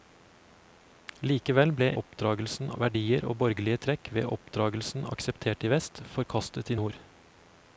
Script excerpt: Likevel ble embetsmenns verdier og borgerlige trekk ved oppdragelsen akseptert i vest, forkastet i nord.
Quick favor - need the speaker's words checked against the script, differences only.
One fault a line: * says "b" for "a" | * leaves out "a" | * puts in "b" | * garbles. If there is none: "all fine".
* says "oppdragelsen" for "embetsmenns"